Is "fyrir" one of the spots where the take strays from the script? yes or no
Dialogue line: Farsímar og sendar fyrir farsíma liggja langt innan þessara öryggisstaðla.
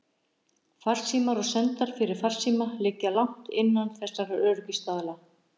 no